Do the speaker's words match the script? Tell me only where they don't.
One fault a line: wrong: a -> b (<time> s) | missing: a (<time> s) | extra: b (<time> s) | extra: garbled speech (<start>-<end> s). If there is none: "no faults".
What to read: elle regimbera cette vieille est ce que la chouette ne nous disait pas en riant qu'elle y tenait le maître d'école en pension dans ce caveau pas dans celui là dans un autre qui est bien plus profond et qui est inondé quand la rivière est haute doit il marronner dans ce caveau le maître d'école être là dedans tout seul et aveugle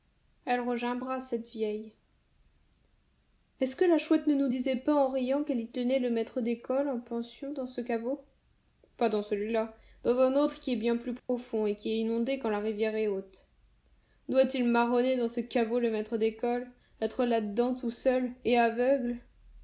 no faults